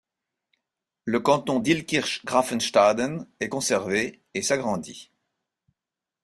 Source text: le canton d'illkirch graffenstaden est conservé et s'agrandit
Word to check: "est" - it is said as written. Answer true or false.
true